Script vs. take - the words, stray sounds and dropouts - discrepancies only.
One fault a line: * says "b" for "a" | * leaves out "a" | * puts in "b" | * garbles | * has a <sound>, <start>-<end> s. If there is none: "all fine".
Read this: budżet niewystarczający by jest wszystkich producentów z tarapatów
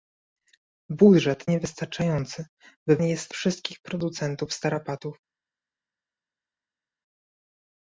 all fine